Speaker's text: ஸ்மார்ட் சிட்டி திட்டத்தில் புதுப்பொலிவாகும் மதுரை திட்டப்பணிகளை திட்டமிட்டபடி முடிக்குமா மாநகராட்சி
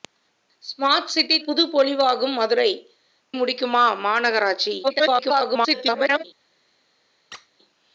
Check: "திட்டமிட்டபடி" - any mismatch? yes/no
yes